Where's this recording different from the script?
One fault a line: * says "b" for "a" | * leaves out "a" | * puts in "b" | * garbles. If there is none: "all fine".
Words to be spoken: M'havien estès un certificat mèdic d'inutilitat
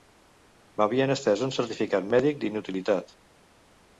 all fine